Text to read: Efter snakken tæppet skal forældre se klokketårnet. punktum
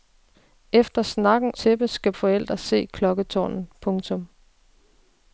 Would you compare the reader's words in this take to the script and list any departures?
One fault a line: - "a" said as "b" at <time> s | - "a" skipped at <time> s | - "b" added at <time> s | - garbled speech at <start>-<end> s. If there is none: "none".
none